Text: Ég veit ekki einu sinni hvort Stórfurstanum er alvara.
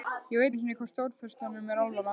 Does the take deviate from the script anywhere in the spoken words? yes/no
yes